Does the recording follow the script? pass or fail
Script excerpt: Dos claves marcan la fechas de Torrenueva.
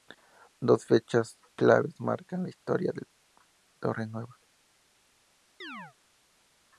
fail